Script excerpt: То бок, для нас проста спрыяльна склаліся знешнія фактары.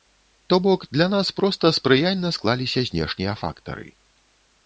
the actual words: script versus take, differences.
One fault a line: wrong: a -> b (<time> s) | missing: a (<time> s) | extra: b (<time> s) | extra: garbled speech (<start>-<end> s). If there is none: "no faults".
no faults